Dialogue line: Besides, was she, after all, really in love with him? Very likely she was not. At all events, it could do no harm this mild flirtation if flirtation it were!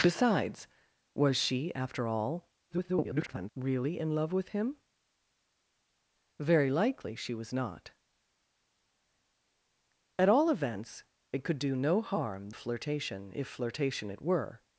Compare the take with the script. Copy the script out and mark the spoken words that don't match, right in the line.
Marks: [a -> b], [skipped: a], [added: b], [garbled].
Besides, was she, after all, [garbled] really in love with him? Very likely she was not. At all events, it could do no harm [skipped: this mild] flirtation if flirtation it were!